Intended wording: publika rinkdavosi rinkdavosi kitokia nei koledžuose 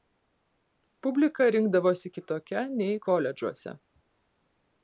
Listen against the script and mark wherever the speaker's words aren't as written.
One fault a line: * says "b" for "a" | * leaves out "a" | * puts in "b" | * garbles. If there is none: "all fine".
* leaves out "rinkdavosi"